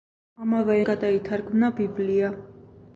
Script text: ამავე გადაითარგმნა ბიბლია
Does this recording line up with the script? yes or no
yes